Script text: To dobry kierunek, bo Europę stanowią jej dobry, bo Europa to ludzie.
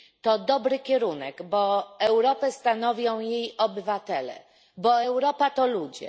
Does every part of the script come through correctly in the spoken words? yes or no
no